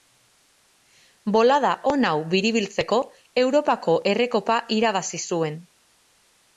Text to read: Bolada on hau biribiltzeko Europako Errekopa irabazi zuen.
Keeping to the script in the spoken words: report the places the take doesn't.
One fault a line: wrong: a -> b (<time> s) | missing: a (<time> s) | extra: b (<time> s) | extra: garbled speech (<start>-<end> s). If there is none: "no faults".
no faults